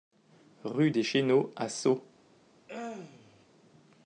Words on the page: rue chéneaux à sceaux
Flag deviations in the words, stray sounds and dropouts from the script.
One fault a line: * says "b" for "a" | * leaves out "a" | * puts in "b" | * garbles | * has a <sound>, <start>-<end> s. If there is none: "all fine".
* puts in "des"
* has a throat clearing, 2.7-3.5 s